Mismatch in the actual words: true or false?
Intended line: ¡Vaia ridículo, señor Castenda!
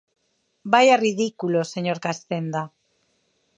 false